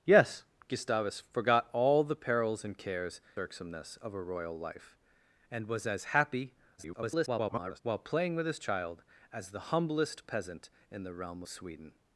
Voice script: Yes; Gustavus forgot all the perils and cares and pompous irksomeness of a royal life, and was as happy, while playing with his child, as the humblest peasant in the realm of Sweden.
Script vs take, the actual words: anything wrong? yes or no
yes